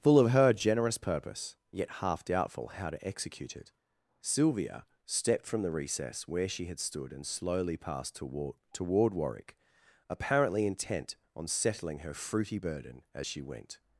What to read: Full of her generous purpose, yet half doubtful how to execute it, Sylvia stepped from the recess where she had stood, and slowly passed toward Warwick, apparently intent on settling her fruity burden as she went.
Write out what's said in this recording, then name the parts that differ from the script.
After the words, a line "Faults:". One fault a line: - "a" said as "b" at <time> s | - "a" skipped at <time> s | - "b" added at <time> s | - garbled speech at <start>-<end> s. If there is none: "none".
Full of her generous purpose, yet half doubtful how to execute it, Sylvia stepped from the recess where she had stood, and slowly passed toward toward Warwick, apparently intent on settling her fruity burden as she went.
Faults:
- "toward" added at 8.7 s